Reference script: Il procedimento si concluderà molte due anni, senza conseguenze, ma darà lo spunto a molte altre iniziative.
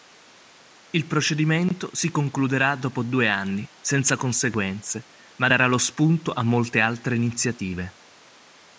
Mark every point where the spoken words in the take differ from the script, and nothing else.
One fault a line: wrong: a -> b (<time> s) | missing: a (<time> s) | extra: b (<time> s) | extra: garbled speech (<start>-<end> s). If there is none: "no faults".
wrong: molte -> dopo (2.8 s)